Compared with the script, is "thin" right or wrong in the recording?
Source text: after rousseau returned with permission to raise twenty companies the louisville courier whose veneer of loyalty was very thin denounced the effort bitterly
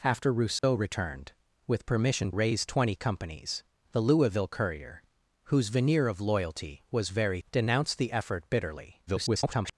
wrong